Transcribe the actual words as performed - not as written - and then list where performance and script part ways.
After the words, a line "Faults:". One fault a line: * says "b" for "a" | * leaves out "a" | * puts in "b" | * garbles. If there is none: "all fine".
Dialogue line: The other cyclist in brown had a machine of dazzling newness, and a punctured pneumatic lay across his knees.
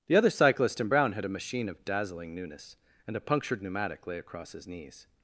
The other cyclist in brown had a machine of dazzling newness, and a punctured pneumatic lay across his knees.
Faults:
all fine